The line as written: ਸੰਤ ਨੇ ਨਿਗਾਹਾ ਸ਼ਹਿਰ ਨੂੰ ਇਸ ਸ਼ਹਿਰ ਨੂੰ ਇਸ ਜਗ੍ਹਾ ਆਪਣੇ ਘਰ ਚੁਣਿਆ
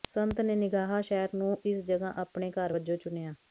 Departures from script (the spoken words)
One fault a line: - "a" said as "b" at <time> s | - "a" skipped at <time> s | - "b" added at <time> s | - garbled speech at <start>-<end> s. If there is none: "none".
- "ਸ਼ਹਿਰ ਨੂੰ ਇਸ" skipped at 1.8 s
- "ਵਜੋਂ" added at 2.7 s